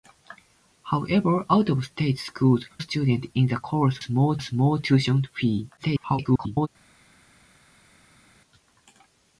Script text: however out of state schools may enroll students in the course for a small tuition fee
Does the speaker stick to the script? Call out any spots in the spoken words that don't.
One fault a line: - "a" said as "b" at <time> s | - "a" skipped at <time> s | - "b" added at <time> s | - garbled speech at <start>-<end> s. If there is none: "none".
- "may enroll" skipped at 2.6 s
- "for" said as "small" at 4.0 s
- garbled speech at 5.8-6.7 s